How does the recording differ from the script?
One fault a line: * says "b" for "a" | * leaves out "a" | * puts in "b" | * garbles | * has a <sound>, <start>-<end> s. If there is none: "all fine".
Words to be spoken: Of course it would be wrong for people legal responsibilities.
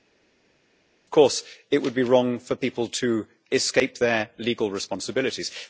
* puts in "to escape their"